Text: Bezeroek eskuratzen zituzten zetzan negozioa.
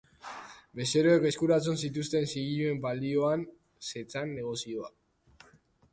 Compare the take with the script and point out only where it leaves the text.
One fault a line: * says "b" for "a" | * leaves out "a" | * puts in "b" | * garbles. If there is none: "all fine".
* puts in "zigiluen balioan"